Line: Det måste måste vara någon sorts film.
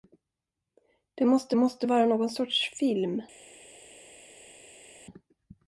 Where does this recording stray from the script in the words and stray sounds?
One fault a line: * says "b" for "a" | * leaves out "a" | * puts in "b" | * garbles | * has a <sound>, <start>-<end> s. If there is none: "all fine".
all fine